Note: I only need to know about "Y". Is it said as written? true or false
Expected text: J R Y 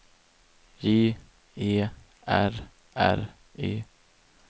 true